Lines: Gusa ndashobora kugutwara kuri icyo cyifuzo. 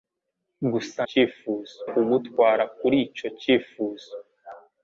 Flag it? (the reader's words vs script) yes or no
yes